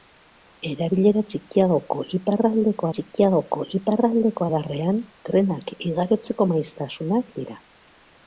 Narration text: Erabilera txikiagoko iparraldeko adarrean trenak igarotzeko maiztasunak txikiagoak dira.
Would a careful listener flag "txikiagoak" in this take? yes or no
yes